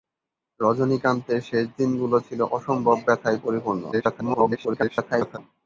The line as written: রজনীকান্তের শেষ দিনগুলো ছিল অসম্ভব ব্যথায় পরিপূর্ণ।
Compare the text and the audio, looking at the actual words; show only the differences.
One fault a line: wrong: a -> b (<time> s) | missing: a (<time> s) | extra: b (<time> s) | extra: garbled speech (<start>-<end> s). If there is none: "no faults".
extra: garbled speech (3.9-5.4 s)